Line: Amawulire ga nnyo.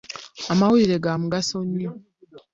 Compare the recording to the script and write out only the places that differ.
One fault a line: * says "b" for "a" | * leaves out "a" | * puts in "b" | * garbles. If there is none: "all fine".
* puts in "mugaso"